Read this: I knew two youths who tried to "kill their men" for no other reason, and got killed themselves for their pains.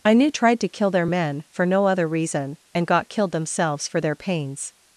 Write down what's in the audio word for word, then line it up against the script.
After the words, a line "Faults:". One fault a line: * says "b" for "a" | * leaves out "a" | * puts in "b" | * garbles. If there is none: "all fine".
I knew tried to "kill their men" for no other reason, and got killed themselves for their pains.
Faults:
* leaves out "two youths who"